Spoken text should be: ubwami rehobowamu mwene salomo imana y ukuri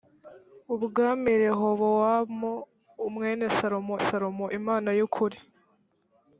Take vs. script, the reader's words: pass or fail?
fail